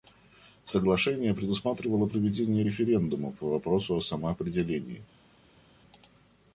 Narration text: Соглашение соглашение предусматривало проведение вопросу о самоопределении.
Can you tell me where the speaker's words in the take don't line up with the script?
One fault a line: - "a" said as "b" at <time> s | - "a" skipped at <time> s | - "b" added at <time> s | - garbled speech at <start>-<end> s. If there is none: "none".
- "соглашение" skipped at 1.4 s
- "референдума по" added at 2.6 s